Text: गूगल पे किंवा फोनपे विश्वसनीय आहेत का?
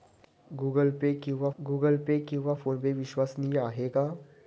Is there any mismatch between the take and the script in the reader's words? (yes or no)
yes